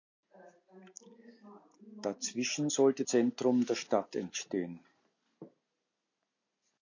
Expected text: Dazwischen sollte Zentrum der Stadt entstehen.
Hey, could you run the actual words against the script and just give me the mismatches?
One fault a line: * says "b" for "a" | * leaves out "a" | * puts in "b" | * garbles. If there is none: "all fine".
all fine